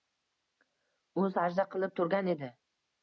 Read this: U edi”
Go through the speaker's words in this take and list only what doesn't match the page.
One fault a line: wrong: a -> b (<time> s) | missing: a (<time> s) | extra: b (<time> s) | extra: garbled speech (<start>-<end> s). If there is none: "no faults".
extra: sajda qilib turgan (1.3 s)